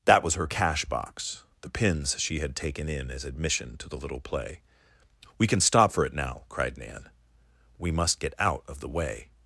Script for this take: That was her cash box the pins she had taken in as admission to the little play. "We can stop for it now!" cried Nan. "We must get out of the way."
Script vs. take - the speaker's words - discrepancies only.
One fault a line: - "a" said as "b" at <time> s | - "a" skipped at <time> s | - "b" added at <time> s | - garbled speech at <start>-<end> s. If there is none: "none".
none